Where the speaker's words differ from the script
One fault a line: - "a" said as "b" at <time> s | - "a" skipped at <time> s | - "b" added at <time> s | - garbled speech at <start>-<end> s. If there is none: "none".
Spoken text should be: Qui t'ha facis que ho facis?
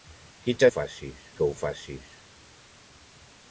none